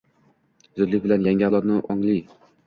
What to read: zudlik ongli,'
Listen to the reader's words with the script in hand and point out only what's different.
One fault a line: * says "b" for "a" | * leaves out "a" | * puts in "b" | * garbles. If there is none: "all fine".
* puts in "bilan yangi avlodni"